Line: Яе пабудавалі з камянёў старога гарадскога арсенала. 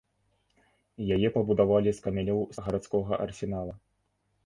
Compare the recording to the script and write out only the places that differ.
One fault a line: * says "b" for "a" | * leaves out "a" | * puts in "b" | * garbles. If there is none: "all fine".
* leaves out "старога"